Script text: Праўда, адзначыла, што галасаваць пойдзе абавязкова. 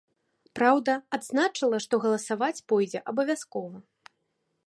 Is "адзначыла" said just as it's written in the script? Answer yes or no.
yes